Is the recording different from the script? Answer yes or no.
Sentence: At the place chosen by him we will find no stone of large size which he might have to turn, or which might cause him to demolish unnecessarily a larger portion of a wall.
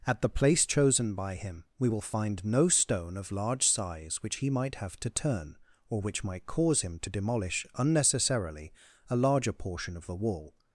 yes